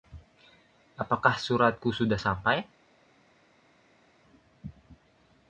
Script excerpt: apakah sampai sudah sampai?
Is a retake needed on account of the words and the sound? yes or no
yes